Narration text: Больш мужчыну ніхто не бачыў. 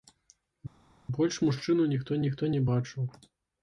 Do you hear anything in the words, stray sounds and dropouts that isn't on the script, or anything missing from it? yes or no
yes